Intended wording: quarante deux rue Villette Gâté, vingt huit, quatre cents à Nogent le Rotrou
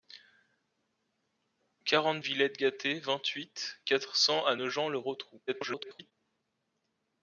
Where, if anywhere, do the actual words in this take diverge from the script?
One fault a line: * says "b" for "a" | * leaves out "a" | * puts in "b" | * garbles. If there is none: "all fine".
* leaves out "deux rue"
* garbles